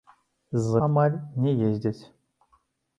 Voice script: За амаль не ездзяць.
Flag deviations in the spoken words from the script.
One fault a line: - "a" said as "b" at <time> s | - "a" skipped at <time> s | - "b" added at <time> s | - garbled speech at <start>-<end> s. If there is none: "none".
none